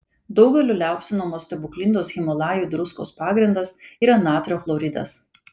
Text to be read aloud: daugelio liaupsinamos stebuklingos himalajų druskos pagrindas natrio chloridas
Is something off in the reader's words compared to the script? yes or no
yes